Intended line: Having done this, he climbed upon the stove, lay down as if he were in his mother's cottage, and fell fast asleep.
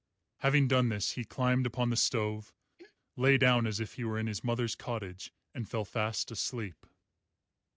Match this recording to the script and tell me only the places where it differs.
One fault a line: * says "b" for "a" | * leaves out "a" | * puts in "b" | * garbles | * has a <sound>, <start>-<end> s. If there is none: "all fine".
* has a throat clearing, 2.8-3.0 s